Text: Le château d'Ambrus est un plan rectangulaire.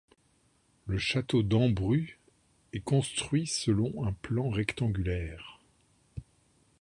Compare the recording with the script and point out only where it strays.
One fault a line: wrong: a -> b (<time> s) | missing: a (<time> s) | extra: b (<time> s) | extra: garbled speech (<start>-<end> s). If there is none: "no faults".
extra: construit selon (2.8 s)